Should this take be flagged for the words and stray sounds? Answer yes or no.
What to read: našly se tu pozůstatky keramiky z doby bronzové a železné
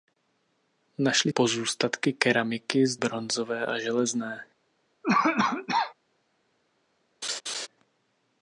yes